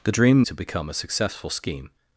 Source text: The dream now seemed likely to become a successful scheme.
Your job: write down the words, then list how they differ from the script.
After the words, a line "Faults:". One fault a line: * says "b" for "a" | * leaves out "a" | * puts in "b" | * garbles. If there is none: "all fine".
The dream to become a successful scheme.
Faults:
* leaves out "now seemed likely"